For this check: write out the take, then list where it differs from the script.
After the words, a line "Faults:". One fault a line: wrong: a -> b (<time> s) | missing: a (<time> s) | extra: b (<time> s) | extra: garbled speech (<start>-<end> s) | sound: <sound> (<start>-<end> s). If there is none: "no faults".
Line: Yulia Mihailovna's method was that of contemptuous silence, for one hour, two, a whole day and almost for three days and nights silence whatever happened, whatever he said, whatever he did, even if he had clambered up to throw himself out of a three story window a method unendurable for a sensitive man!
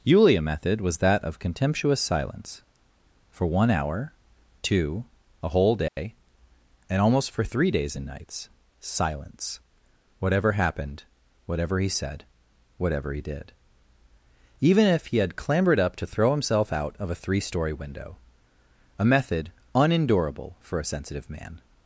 Yulia method was that of contemptuous silence, for one hour, two, a whole day and almost for three days and nights silence whatever happened, whatever he said, whatever he did, even if he had clambered up to throw himself out of a three story window a method unendurable for a sensitive man!
Faults:
missing: Mihailovna's (0.4 s)
sound: dropout (5.9-6.0 s)